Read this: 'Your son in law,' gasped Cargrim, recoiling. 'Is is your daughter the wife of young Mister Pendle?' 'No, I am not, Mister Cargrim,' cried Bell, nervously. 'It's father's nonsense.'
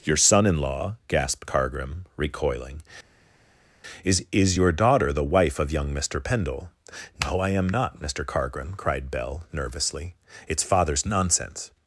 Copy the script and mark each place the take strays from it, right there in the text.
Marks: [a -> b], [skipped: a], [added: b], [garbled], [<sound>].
'Your son in law,' gasped Cargrim, recoiling. 'Is is your daughter the wife of young Mister Pendle?' 'No, I am not, Mister Cargrim,' cried Bell, nervously. 'It's father's nonsense.'